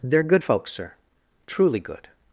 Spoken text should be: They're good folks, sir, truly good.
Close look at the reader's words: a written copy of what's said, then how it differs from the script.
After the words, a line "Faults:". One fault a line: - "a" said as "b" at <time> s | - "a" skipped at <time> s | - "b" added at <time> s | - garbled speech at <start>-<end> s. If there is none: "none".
They're good folks, sir, truly good.
Faults:
none